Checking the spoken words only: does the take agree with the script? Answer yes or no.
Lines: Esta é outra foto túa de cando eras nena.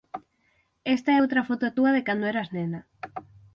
yes